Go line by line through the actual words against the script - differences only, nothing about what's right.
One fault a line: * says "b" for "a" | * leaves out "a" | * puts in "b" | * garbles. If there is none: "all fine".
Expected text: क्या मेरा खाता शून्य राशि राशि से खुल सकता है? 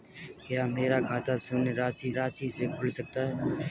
all fine